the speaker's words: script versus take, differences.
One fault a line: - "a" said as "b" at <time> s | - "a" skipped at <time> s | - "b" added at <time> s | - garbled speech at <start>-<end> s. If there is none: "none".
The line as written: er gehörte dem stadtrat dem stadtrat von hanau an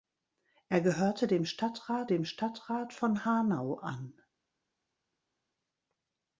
none